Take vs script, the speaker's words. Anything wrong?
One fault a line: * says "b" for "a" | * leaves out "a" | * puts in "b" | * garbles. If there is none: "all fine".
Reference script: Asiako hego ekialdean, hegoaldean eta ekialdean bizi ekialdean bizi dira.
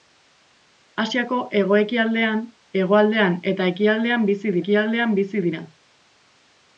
all fine